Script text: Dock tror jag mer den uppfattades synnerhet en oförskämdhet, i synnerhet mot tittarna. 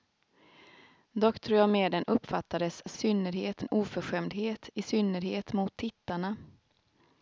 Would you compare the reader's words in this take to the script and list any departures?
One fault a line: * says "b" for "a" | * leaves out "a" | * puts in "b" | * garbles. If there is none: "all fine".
all fine